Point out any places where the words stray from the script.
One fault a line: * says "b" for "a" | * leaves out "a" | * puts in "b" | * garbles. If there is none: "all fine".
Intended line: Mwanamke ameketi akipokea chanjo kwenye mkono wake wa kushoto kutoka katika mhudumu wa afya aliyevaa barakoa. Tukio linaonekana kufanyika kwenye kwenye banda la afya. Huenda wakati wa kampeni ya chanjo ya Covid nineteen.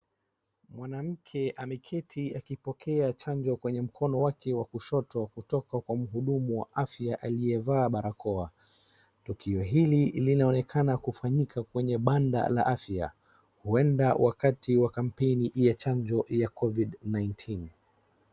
* says "kwa" for "katika"
* puts in "hili"
* leaves out "kwenye"